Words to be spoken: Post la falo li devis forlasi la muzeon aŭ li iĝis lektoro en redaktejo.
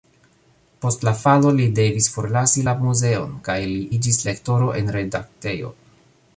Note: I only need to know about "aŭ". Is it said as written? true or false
false